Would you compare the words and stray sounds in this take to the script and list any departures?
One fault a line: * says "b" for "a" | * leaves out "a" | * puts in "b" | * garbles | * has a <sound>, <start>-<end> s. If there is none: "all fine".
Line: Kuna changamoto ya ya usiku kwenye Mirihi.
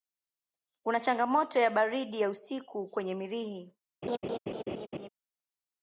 * puts in "baridi"
* has a laugh, 4.0-5.1 s